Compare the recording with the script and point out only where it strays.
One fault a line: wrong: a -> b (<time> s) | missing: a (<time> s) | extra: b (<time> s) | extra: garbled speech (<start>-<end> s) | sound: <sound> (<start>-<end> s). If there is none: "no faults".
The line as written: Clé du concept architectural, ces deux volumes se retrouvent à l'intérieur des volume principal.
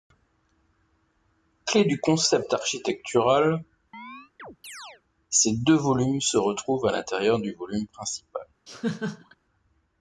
sound: chirp (3.9-5.0 s)
wrong: des -> du (7.4 s)
sound: laugh (8.7-9.4 s)